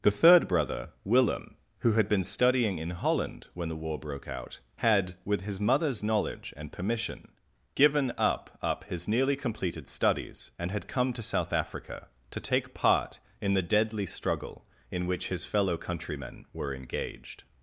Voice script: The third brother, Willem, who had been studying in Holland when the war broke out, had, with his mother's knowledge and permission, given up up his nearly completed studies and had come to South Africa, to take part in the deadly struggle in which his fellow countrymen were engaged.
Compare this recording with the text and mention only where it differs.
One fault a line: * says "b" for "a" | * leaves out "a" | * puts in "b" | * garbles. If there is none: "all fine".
all fine